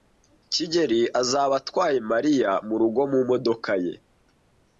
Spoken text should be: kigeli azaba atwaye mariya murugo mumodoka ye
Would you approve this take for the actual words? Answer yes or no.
yes